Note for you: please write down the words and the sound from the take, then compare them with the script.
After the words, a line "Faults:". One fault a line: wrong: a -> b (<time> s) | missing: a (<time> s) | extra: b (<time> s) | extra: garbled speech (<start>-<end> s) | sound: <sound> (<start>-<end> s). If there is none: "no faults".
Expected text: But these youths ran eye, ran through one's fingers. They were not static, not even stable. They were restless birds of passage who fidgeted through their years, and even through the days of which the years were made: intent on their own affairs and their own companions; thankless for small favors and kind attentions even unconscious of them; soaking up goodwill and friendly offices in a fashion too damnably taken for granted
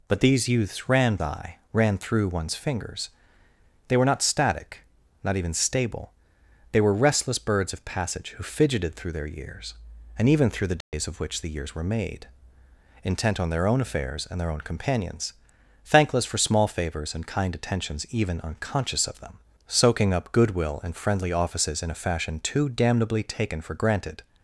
But these youths ran eye, ran through one's fingers. They were not static, not even stable. They were restless birds of passage who fidgeted through their years, and even through the days of which the years were made: intent on their own affairs and their own companions; thankless for small favors and kind attentions even unconscious of them; soaking up goodwill and friendly offices in a fashion too damnably taken for granted
Faults:
sound: dropout (10.8-10.9 s)